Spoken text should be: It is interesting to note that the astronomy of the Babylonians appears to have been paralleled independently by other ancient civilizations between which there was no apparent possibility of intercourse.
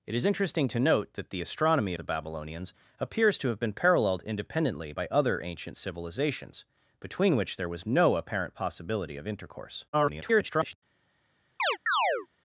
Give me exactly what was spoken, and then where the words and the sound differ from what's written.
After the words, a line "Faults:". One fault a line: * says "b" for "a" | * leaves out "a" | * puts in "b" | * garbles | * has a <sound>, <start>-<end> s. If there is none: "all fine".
It is interesting to note that the astronomy the Babylonians appears to have been paralleled independently by other ancient civilizations between which there was no apparent possibility of intercourse. [garbled]
Faults:
* leaves out "of"
* garbles
* has a chirp, 11.6-12.3 s